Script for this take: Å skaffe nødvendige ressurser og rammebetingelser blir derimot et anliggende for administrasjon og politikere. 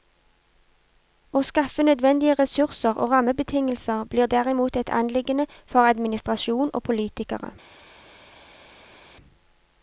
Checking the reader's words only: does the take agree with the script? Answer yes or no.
yes